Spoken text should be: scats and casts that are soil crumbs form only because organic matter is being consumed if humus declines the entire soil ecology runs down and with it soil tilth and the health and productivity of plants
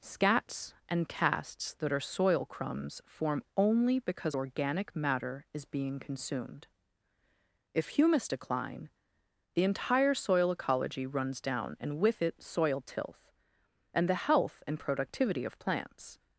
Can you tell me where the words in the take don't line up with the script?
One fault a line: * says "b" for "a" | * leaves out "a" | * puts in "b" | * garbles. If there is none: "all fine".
* says "decline" for "declines"